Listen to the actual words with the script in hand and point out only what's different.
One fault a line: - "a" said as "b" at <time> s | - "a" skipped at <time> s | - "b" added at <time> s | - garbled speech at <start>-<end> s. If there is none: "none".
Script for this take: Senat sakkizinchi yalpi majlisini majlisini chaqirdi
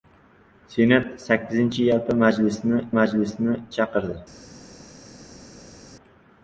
none